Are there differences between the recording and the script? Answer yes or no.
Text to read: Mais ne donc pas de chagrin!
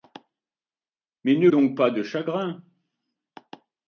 no